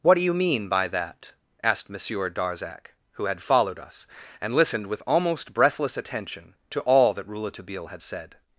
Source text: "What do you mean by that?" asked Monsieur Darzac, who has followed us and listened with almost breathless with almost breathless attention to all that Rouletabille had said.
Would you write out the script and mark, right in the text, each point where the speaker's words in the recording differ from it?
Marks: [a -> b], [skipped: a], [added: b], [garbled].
"What do you mean by that?" asked Monsieur Darzac, who [has -> had] followed us and listened with almost breathless [skipped: with almost breathless] attention to all that Rouletabille had said.